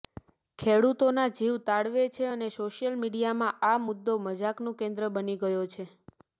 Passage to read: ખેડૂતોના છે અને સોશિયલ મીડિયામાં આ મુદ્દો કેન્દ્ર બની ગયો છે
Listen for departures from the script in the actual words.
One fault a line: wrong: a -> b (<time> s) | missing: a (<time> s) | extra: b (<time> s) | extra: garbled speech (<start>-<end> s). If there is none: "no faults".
extra: જીવ તાળવે (1.3 s)
extra: મજાકનું (4.2 s)